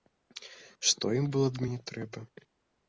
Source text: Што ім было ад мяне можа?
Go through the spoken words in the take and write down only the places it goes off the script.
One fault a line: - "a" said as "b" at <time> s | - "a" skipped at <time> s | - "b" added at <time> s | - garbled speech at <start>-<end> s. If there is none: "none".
- "можа" said as "трэба" at 1.9 s